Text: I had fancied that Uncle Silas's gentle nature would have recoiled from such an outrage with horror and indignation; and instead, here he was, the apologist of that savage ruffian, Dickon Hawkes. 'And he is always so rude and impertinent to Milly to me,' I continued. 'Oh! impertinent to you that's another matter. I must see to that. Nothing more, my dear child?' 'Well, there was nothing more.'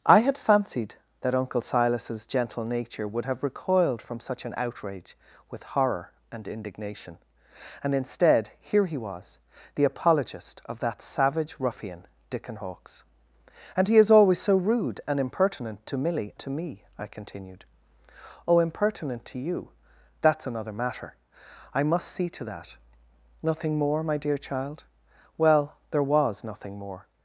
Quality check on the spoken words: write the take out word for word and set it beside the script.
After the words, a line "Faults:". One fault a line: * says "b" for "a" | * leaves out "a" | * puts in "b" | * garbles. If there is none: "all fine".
I had fancied that Uncle Silas's gentle nature would have recoiled from such an outrage with horror and indignation; and instead, here he was, the apologist of that savage ruffian, Dickon Hawkes. 'And he is always so rude and impertinent to Milly to me,' I continued. 'Oh! impertinent to you that's another matter. I must see to that. Nothing more, my dear child?' 'Well, there was nothing more.'
Faults:
all fine